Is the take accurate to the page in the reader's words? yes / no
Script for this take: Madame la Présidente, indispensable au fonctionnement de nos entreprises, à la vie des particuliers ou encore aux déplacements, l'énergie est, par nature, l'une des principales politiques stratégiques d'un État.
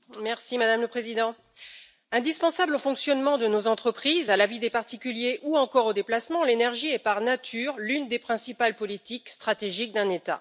yes